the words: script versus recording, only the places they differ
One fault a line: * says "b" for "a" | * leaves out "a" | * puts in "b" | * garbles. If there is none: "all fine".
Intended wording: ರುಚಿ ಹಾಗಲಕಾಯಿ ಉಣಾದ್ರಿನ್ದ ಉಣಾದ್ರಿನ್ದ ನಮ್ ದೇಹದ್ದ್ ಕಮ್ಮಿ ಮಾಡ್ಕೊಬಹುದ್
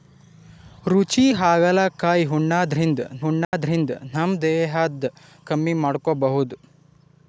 all fine